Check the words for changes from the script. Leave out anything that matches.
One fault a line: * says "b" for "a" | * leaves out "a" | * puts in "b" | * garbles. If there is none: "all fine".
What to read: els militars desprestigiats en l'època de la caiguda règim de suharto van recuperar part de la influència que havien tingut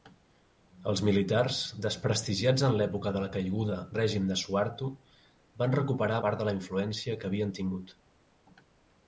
all fine